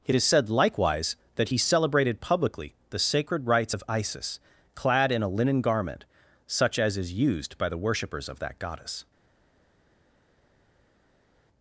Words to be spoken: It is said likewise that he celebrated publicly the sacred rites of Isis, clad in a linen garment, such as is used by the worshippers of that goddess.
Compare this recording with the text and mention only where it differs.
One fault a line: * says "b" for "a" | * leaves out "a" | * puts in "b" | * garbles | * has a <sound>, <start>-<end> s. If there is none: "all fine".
all fine